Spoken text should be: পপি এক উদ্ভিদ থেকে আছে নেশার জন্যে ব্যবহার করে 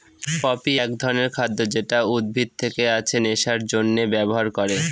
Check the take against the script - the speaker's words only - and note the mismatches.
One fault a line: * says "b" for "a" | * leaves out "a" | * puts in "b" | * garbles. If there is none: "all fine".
* puts in "ধরনের খাদ্য যেটা"